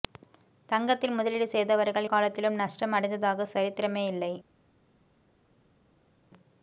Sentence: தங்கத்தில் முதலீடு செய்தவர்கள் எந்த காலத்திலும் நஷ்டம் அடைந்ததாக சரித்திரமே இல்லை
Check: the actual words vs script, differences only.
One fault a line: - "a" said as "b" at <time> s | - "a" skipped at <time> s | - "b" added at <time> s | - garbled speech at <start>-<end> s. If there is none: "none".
- "எந்த" skipped at 2.1 s